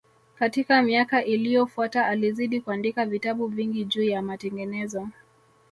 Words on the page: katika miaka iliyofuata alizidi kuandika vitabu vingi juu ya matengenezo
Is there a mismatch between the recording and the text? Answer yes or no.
no